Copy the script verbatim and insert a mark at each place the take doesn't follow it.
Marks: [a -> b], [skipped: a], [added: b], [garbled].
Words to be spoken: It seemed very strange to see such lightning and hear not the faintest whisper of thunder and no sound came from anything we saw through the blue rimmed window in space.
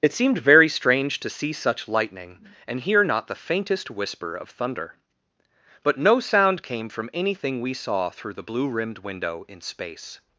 It seemed very strange to see such lightning and hear not the faintest whisper of thunder [and -> but] no sound came from anything we saw through the blue rimmed window in space.